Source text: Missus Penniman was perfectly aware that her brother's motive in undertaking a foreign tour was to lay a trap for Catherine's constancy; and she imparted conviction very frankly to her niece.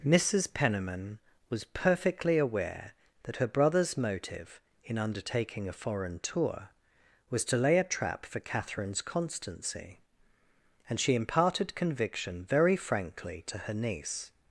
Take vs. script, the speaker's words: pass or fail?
pass